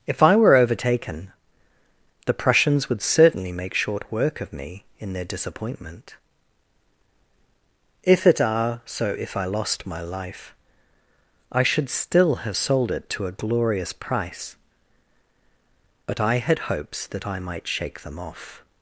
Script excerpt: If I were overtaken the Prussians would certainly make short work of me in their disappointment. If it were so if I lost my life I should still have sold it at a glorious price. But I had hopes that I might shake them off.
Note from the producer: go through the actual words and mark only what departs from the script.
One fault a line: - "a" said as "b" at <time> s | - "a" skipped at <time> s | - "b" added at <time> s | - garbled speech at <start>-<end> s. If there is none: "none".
- "were" said as "are" at 8.4 s
- "at" said as "to" at 13.1 s